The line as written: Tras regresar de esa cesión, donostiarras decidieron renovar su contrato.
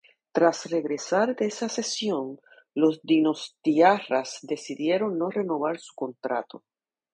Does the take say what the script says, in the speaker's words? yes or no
no